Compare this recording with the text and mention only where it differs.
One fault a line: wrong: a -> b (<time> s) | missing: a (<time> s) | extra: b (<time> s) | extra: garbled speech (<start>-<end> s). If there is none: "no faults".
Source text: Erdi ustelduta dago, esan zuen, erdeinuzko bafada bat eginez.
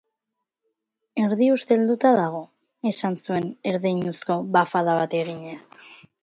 no faults